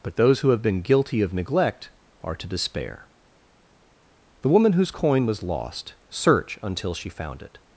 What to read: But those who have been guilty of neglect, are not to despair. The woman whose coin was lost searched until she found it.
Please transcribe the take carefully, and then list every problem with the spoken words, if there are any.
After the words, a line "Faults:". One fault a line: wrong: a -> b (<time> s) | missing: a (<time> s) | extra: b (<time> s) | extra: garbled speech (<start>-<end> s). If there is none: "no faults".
But those who have been guilty of neglect, are to despair. The woman whose coin was lost search until she found it.
Faults:
missing: not (2.4 s)
wrong: searched -> search (6.1 s)